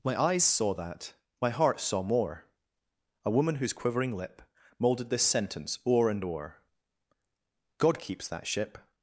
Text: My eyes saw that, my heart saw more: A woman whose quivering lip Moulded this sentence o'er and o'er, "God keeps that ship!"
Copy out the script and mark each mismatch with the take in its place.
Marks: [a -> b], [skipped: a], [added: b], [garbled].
My eyes saw that, my heart saw more: A woman whose quivering lip Moulded this sentence o'er and o'er, "God keeps that ship!"